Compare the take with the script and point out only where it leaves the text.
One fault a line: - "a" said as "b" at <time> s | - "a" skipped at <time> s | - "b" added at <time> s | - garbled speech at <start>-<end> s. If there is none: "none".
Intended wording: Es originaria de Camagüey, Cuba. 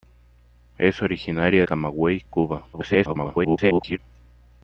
- "de" skipped at 1.6 s
- garbled speech at 2.7-4.0 s